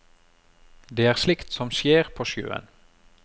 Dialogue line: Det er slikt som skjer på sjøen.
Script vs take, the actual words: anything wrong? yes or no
no